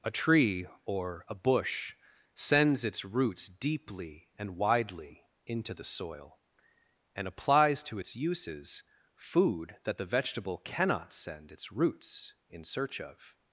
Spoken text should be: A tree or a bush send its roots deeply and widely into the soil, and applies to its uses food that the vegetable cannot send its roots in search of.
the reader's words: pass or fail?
fail